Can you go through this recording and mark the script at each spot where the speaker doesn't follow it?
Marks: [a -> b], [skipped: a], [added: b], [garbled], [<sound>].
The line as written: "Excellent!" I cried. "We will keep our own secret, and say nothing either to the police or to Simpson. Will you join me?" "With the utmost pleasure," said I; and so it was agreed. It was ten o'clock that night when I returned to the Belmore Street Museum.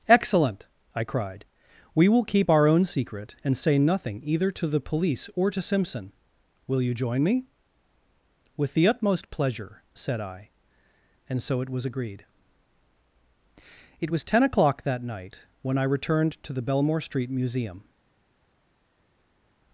"Excellent!" I cried. "We will keep our own secret, and say nothing either to the police or to Simpson. Will you join me?" "With the utmost pleasure," said I; and so it was agreed. It was ten o'clock that night when I returned to the Belmore Street Museum.